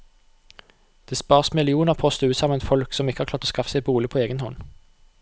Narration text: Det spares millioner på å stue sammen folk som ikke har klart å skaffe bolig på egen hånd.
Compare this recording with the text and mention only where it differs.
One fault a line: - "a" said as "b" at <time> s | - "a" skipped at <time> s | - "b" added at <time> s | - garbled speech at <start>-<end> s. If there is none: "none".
- "seg" added at 3.7 s